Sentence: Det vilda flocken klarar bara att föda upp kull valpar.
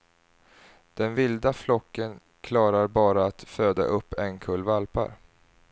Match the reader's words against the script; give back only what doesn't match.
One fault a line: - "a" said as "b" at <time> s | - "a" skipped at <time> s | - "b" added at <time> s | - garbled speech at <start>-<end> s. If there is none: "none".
- "Det" said as "Den" at 0.9 s
- "en" added at 4.1 s